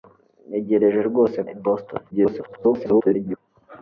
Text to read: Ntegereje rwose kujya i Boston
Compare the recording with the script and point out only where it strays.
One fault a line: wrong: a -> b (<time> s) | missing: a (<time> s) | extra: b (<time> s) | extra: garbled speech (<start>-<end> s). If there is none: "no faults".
missing: kujya (1.4 s)
extra: garbled speech (2.1-3.4 s)